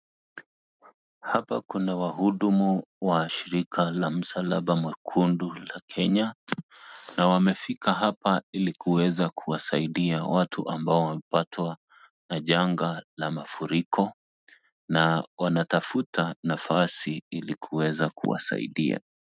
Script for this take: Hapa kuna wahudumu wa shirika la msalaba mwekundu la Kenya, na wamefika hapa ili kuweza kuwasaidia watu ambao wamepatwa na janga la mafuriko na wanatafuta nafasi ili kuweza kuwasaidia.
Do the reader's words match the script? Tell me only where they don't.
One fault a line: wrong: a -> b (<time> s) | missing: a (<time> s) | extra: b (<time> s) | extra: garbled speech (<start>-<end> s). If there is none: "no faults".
no faults